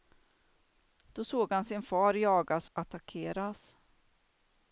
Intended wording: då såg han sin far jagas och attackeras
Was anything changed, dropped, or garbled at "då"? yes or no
no